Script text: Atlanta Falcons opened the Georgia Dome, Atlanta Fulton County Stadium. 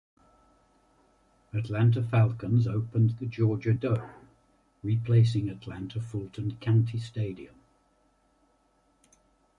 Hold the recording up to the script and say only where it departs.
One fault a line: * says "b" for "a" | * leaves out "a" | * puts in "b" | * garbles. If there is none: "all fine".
* puts in "replacing"